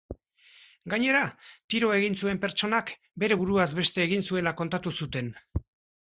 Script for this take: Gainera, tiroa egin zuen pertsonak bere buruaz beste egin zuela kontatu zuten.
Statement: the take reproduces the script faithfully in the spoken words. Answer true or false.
true